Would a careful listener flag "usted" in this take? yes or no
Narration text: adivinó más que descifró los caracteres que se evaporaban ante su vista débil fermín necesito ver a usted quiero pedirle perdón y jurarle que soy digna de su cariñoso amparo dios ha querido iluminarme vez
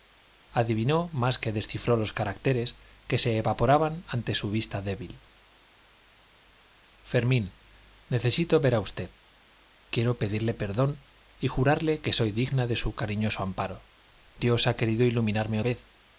no